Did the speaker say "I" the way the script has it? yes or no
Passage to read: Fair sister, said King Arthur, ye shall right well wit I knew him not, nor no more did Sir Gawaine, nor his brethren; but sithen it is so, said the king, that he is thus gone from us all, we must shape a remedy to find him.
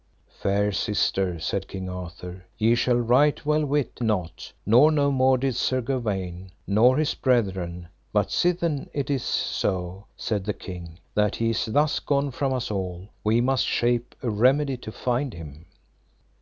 no